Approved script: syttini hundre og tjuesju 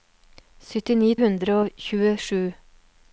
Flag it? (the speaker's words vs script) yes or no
no